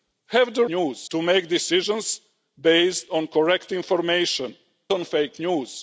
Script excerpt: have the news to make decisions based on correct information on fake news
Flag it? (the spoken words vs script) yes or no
no